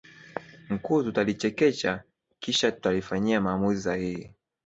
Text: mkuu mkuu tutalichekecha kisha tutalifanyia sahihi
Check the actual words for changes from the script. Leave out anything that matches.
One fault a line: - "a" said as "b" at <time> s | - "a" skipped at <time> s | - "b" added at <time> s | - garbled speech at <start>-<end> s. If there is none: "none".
- "mkuu" skipped at 1.0 s
- "maamuzi" added at 3.4 s